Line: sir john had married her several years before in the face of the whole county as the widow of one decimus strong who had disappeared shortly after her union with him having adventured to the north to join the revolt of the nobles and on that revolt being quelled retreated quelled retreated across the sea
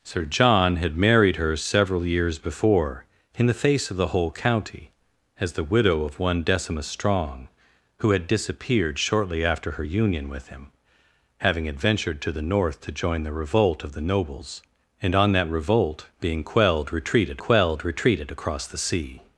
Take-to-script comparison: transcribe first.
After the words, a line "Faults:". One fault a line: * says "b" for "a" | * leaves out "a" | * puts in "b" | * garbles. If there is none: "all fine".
sir john had married her several years before in the face of the whole county as the widow of one decimus strong who had disappeared shortly after her union with him having adventured to the north to join the revolt of the nobles and on that revolt being quelled retreated quelled retreated across the sea
Faults:
all fine